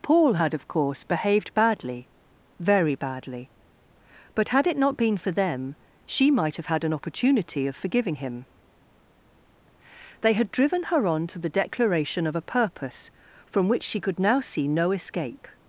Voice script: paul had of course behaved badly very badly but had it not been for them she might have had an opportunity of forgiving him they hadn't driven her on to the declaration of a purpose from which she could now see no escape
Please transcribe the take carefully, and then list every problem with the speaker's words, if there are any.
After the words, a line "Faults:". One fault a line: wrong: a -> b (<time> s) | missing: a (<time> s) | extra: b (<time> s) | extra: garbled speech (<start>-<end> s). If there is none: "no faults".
paul had of course behaved badly very badly but had it not been for them she might have had an opportunity of forgiving him they had driven her on to the declaration of a purpose from which she could now see no escape
Faults:
wrong: hadn't -> had (10.3 s)